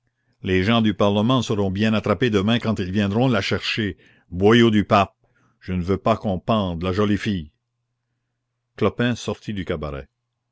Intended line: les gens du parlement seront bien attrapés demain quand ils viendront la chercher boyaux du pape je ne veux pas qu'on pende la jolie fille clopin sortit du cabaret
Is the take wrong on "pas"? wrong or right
right